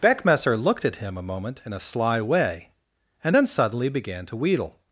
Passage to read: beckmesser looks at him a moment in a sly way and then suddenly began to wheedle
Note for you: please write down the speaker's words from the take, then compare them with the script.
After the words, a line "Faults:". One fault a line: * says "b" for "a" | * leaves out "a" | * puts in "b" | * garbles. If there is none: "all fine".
beckmesser looked at him a moment in a sly way and then suddenly began to wheedle
Faults:
* says "looked" for "looks"